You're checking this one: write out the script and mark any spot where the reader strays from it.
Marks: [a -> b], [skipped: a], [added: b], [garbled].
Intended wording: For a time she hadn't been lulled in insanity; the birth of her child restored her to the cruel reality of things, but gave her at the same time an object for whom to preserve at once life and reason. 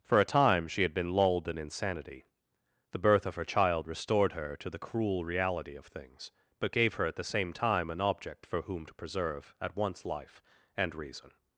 For a time she [hadn't -> had] been lulled in insanity; the birth of her child restored her to the cruel reality of things, but gave her at the same time an object for whom to preserve at once life and reason.